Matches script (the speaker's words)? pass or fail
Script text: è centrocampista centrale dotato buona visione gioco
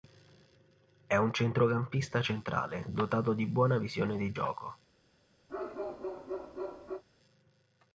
fail